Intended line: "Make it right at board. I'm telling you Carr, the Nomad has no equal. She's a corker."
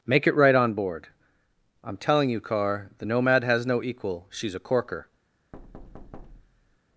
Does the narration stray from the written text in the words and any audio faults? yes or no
yes